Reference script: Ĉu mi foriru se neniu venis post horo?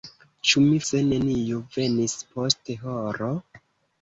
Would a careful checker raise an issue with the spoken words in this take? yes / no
yes